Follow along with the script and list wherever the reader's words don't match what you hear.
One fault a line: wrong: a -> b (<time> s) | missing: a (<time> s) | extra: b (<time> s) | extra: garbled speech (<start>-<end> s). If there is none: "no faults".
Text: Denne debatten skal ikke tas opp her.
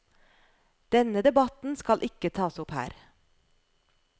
no faults